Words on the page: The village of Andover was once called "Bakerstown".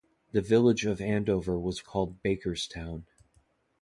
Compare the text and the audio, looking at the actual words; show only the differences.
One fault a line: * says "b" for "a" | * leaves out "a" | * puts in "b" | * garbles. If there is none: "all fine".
* leaves out "once"